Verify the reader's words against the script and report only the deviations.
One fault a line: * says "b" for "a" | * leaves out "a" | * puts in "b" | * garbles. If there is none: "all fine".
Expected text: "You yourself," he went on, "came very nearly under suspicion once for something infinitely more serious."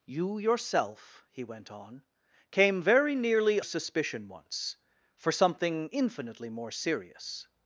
* leaves out "under"